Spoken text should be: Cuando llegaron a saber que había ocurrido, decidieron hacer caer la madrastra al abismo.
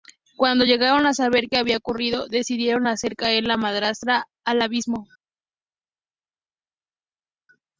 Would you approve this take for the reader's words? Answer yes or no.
yes